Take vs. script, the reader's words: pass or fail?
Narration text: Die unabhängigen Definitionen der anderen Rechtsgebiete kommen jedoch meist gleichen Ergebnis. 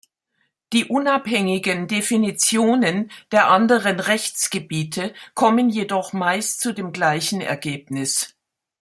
fail